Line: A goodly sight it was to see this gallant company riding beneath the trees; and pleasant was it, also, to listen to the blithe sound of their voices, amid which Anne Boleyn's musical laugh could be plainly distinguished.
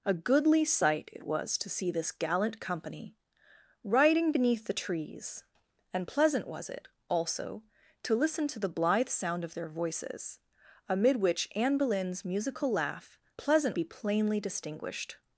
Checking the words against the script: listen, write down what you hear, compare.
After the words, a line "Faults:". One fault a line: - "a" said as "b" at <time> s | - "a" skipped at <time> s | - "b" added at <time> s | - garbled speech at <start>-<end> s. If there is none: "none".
A goodly sight it was to see this gallant company riding beneath the trees; and pleasant was it, also, to listen to the blithe sound of their voices, amid which Anne Boleyn's musical laugh pleasant be plainly distinguished.
Faults:
- "could" said as "pleasant" at 13.4 s